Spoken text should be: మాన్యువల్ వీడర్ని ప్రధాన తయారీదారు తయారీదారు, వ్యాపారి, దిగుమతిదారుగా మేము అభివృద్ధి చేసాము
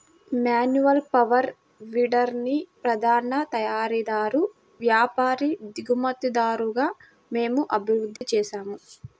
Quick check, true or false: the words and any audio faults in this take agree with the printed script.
false